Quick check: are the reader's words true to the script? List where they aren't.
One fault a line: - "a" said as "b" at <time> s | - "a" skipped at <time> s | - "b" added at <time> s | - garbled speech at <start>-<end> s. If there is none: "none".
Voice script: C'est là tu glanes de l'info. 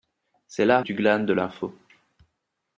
none